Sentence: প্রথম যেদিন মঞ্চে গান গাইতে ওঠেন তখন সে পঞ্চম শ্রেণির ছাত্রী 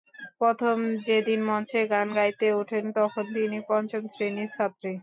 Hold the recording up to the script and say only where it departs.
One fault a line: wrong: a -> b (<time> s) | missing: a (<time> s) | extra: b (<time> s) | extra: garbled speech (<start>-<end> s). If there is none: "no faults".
wrong: সে -> তিনি (3.4 s)